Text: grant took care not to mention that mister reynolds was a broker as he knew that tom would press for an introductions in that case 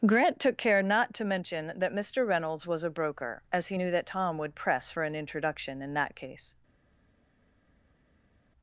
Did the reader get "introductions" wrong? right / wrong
wrong